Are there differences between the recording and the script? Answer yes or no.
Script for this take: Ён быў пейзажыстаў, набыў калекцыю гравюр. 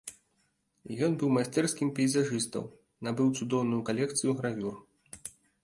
yes